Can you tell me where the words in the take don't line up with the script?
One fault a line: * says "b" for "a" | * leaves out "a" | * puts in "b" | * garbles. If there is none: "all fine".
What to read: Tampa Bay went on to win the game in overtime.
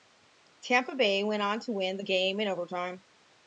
all fine